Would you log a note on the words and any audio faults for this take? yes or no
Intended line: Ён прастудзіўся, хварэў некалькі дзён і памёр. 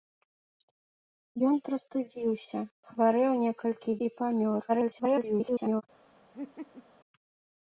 yes